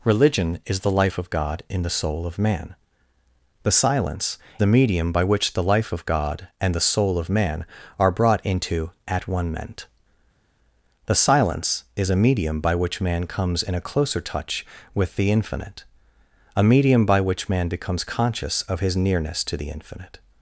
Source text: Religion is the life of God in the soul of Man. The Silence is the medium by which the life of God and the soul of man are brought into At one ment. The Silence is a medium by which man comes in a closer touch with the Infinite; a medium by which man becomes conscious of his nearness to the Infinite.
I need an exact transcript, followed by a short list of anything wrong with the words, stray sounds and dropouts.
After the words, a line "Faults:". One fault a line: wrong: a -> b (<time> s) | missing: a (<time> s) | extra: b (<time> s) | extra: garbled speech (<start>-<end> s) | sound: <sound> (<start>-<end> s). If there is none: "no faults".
Religion is the life of God in the soul of Man. The Silence the medium by which the life of God and the soul of man are brought into At one ment. The Silence is a medium by which man comes in a closer touch with the Infinite; a medium by which man becomes conscious of his nearness to the Infinite.
Faults:
missing: is (4.4 s)